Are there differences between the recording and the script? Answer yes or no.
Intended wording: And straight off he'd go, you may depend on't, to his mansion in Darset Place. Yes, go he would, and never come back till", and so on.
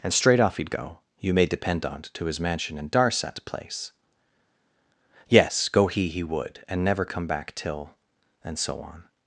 yes